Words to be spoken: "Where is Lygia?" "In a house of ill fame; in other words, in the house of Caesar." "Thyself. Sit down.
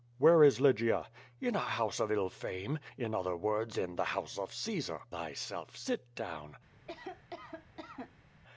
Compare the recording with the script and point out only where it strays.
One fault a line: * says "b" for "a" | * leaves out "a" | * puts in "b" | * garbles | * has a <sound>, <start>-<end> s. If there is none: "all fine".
* has a cough, 6.7-8.3 s